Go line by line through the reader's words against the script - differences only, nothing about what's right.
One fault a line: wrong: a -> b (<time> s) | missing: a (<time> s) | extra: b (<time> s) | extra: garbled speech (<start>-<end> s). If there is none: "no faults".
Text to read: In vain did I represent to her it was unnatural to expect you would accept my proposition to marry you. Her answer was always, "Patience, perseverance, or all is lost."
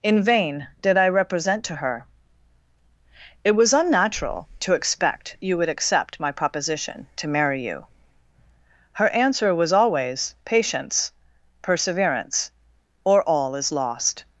no faults